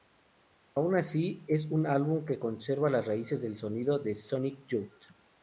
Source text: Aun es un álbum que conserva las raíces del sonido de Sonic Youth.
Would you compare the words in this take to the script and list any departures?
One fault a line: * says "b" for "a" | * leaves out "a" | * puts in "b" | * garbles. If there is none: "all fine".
* puts in "así"